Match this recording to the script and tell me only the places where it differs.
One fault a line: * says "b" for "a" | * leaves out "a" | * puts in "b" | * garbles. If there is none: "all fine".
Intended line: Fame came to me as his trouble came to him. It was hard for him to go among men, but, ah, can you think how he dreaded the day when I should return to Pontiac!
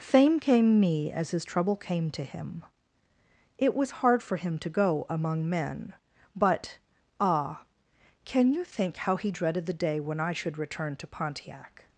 * leaves out "to"